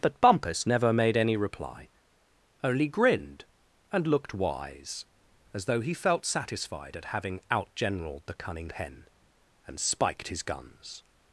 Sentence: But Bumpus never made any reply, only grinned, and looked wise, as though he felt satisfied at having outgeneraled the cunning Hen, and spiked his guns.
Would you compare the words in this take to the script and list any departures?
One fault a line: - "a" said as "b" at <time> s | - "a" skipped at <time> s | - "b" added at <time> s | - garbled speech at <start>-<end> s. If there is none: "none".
none